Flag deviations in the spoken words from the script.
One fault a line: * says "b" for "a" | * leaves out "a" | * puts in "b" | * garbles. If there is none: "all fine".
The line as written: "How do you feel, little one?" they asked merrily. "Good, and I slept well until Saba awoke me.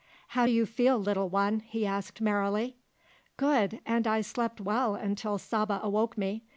* says "he" for "they"